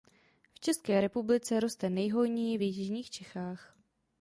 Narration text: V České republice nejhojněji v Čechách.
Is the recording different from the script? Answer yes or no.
yes